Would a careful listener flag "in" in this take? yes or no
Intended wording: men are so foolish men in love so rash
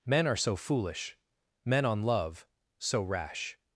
yes